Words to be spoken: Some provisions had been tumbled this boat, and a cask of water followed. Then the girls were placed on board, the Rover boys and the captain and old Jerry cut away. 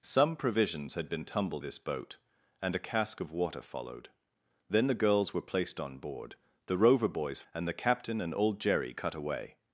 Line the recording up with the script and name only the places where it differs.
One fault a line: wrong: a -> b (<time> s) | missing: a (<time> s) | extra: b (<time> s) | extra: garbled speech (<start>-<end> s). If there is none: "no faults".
no faults